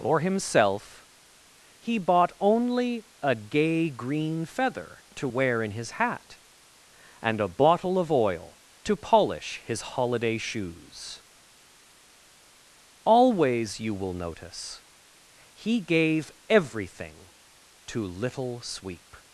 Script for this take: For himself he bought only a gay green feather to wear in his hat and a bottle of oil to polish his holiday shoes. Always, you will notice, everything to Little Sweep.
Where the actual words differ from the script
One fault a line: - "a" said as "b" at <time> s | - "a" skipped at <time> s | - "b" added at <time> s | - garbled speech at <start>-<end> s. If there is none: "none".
- "he gave" added at 15.5 s